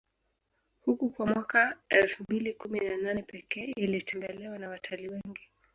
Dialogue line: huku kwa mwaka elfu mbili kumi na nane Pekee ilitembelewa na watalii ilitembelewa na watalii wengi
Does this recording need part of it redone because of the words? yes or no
yes